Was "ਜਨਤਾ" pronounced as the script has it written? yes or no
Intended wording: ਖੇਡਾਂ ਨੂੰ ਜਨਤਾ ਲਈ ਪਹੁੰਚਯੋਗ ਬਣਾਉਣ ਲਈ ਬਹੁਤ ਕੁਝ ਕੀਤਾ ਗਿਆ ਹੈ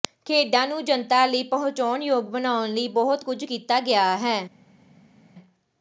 yes